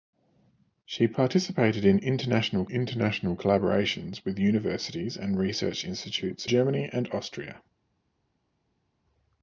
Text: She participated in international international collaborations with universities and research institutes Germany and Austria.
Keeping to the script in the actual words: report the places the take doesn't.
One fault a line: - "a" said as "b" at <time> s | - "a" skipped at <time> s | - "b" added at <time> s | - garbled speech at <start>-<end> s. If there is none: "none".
none